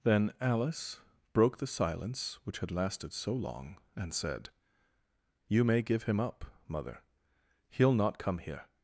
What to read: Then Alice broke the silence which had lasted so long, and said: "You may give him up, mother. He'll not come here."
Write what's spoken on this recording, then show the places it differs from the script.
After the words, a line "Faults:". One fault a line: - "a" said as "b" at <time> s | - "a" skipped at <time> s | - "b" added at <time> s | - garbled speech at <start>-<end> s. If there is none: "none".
Then Alice broke the silence which had lasted so long, and said: "You may give him up, mother. He'll not come here."
Faults:
none